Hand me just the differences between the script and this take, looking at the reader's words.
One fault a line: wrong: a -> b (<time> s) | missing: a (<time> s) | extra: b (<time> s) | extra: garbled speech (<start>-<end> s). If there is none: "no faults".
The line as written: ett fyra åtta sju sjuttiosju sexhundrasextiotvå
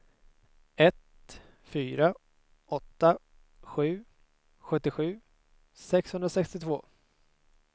no faults